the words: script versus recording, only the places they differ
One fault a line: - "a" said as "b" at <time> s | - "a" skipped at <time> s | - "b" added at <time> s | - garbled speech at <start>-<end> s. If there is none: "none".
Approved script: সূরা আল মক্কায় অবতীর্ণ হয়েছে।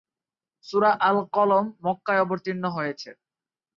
- "কলম" added at 1.4 s